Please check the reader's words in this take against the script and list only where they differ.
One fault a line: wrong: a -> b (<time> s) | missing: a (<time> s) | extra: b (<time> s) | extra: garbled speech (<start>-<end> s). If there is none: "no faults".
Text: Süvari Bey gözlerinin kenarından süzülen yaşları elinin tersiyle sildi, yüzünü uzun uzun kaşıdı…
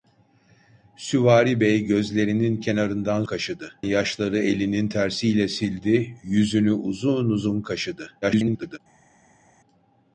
wrong: süzülen -> kaşıdı (3.2 s)
extra: garbled speech (8.2-8.8 s)